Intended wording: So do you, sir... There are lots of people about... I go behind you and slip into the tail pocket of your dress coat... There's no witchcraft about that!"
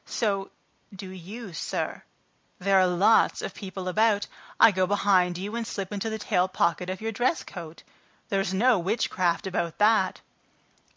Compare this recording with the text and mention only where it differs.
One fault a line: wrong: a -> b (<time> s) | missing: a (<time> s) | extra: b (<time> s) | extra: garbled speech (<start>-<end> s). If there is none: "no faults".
no faults